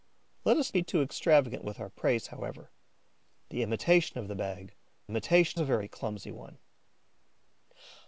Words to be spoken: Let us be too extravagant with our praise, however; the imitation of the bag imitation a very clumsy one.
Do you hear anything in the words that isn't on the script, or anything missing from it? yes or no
no